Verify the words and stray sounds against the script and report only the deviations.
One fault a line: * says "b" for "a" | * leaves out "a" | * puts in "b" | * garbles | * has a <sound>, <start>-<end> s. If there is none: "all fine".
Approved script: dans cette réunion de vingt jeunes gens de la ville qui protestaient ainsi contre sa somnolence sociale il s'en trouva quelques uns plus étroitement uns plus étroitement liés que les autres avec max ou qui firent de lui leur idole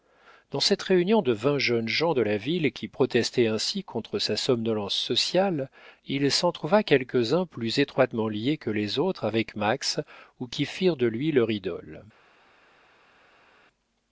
* leaves out "uns plus étroitement"